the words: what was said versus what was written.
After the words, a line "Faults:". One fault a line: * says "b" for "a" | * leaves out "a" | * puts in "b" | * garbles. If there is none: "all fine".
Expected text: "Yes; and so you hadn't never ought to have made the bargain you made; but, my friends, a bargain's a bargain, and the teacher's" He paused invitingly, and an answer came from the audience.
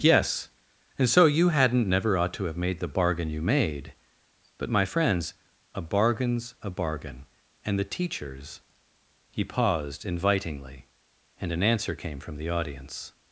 "Yes; and so you hadn't never ought to have made the bargain you made; but, my friends, a bargain's a bargain, and the teacher's" He paused invitingly, and an answer came from the audience.
Faults:
all fine